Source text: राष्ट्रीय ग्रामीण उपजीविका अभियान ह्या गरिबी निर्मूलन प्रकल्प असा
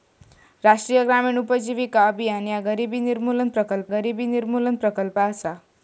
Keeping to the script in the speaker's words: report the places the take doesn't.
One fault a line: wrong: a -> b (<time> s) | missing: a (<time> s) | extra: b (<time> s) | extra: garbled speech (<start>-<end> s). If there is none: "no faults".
extra: गरिबी निर्मूलन प्रकल्प (3.9 s)